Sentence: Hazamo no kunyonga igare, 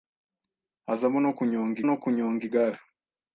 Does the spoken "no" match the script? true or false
true